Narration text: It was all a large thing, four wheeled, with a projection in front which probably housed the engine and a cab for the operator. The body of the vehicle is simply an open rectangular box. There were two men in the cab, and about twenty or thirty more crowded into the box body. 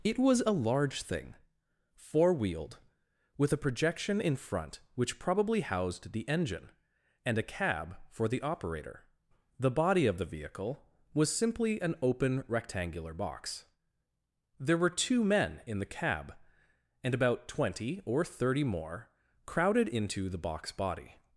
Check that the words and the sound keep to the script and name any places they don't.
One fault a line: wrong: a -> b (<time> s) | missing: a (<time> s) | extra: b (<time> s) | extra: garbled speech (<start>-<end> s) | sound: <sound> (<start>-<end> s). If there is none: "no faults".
missing: all (0.4 s)
wrong: is -> was (11.1 s)